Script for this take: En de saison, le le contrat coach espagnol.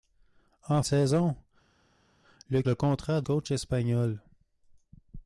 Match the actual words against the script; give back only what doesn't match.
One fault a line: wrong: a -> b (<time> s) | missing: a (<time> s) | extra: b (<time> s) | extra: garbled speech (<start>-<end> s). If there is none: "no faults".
no faults